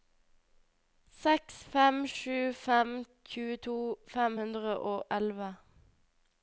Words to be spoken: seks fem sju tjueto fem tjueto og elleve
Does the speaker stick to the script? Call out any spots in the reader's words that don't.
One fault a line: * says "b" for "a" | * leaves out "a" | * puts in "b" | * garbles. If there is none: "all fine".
* puts in "fem"
* says "hundre" for "tjueto"